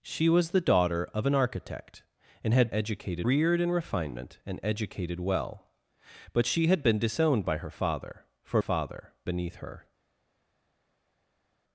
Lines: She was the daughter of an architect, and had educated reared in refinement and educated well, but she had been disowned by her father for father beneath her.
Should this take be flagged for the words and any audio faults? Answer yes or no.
no